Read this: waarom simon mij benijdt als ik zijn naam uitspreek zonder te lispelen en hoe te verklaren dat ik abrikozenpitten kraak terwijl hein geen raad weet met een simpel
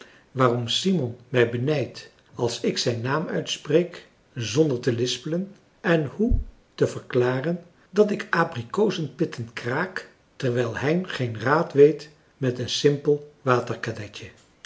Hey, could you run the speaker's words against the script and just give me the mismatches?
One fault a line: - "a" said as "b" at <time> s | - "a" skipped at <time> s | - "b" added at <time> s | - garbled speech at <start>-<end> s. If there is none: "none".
none